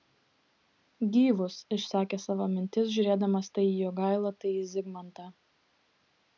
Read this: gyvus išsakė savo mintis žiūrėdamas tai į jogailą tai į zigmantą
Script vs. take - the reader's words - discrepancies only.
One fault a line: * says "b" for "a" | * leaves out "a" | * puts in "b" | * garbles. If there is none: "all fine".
all fine